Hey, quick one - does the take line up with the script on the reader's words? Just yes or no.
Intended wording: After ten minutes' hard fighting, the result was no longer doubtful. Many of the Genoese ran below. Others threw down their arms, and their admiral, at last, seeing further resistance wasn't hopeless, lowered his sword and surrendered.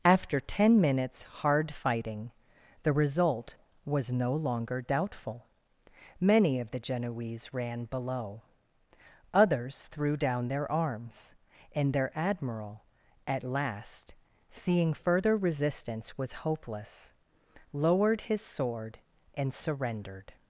no